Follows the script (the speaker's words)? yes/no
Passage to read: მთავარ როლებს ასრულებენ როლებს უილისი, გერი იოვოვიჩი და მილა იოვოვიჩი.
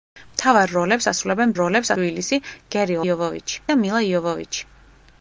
yes